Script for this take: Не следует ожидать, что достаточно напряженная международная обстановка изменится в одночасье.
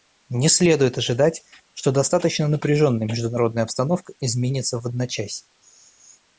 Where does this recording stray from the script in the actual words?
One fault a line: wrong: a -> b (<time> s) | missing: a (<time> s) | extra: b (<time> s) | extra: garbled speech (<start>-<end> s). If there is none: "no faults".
no faults